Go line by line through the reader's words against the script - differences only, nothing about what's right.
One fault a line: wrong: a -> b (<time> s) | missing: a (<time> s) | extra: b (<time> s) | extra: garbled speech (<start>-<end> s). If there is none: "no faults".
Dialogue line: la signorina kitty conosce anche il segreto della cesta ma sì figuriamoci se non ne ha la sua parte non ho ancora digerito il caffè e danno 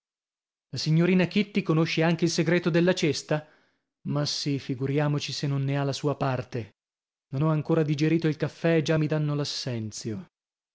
extra: già mi (8.8 s)